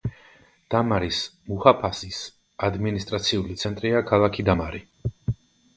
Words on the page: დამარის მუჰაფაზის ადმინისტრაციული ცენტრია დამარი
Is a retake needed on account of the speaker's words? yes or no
yes